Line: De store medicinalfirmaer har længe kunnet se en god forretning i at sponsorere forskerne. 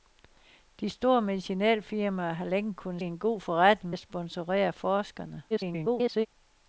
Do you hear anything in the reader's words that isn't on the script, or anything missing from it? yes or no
yes